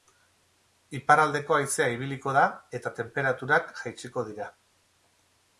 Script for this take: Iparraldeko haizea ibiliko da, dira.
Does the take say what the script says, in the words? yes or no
no